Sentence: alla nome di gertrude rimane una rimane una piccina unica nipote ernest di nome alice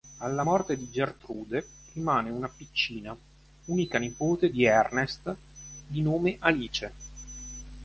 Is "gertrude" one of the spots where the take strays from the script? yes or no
no